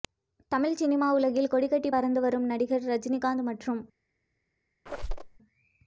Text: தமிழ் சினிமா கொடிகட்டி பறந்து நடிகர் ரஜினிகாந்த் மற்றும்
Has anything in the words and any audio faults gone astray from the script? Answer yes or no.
yes